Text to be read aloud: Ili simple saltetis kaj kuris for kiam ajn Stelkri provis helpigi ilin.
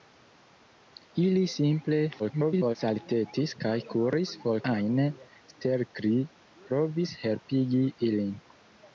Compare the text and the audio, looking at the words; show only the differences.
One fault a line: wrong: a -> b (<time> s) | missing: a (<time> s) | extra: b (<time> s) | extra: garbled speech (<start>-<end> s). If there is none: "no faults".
extra: garbled speech (2.2-2.8 s)
missing: kiam (4.6 s)